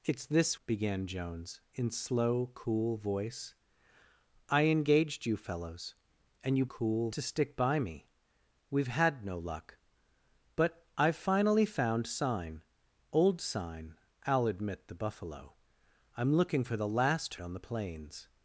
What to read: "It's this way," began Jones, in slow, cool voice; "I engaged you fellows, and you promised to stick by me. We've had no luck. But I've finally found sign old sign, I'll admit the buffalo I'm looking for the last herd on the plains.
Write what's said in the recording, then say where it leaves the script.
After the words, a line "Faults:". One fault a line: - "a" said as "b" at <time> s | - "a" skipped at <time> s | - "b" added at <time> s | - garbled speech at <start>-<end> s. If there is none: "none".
"It's this," began Jones, in slow, cool voice; "I engaged you fellows, and you cool to stick by me. We've had no luck. But I've finally found sign old sign, I'll admit the buffalo I'm looking for the last on the plains.
Faults:
- "way" skipped at 0.6 s
- "promised" said as "cool" at 6.7 s
- "herd" skipped at 17.3 s